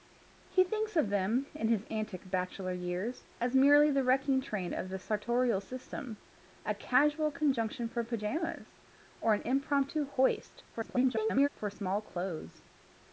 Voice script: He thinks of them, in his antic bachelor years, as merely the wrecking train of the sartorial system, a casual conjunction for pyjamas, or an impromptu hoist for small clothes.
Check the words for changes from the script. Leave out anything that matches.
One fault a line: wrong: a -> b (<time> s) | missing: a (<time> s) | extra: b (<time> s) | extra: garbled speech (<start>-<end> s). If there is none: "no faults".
extra: garbled speech (10.7-11.5 s)